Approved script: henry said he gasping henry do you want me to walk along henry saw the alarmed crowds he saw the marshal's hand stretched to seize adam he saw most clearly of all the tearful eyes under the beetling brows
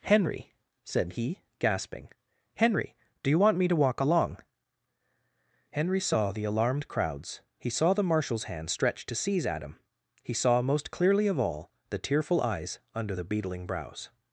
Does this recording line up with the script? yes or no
yes